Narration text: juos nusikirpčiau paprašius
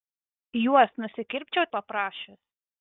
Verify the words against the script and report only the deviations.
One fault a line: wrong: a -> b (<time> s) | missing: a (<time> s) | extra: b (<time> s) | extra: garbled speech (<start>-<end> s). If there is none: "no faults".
no faults